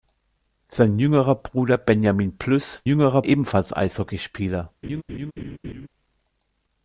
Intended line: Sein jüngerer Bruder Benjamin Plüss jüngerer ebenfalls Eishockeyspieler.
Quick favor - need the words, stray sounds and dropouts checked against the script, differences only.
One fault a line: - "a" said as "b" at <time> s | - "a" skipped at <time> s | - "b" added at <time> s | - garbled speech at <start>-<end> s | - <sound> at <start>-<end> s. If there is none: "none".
- laugh at 4.8-5.9 s